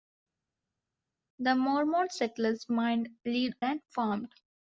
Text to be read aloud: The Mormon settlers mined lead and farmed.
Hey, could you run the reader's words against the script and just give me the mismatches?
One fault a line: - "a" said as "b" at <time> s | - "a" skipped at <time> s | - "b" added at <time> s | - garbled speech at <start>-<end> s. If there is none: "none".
none